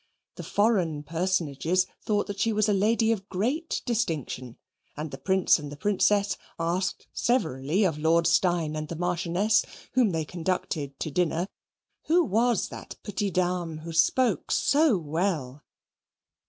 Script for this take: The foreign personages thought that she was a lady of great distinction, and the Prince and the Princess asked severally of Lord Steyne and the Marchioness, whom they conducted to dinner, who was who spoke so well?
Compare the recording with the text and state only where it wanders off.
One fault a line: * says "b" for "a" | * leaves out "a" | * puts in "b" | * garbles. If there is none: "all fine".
* puts in "that petite dame"